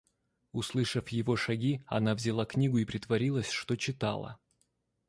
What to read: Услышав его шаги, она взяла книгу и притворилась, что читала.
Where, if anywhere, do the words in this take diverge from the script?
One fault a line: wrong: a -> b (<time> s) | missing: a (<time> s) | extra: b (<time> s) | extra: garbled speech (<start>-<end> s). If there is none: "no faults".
no faults